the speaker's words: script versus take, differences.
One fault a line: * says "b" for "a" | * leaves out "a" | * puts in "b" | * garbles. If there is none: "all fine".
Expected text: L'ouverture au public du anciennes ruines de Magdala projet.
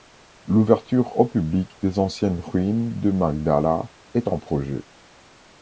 * says "des" for "du"
* puts in "est en"